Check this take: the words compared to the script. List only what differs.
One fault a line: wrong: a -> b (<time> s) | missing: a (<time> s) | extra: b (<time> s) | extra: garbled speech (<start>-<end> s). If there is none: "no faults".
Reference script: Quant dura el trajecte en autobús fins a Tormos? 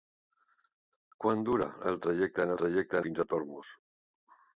wrong: autobús -> trajecte (2.6 s)